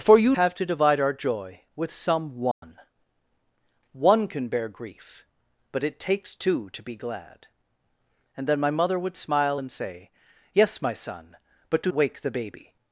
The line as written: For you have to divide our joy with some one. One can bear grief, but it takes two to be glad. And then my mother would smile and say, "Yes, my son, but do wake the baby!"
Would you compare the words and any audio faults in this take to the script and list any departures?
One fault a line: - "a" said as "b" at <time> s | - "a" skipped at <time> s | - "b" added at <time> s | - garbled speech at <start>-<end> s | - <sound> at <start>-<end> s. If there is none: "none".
- dropout at 2.5-2.6 s